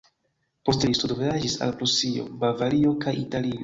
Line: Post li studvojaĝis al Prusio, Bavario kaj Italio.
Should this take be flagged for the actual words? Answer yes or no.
no